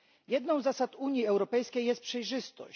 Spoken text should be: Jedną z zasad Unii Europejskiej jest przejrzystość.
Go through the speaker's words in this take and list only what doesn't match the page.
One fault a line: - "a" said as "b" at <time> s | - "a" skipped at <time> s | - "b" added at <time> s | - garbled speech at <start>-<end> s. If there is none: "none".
none